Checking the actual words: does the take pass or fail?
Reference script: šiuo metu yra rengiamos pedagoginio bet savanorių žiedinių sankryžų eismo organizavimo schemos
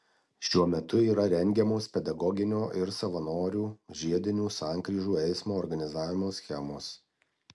fail